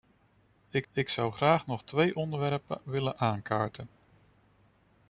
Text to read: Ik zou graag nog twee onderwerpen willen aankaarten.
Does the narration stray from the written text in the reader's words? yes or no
yes